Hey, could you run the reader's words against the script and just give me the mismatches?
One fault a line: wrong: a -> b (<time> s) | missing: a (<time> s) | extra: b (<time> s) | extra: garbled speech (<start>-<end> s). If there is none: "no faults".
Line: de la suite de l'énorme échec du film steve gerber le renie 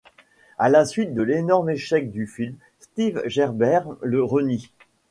wrong: de -> à (0.6 s)